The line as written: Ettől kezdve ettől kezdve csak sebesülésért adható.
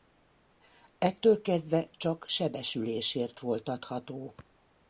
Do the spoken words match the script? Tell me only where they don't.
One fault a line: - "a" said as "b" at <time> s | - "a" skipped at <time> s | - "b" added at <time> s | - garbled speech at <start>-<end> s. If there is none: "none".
- "ettől kezdve" skipped at 1.8 s
- "volt" added at 3.4 s